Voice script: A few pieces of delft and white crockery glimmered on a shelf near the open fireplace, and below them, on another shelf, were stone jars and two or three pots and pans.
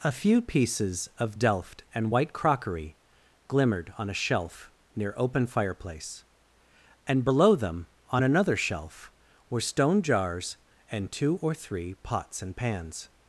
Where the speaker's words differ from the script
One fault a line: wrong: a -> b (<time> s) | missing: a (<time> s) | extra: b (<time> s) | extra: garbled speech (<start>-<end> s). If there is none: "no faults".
missing: the (5.1 s)